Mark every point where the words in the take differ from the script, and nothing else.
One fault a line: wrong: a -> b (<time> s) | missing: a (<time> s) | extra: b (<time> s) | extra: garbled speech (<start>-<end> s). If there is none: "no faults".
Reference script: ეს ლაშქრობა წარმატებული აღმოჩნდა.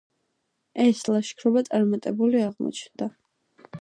no faults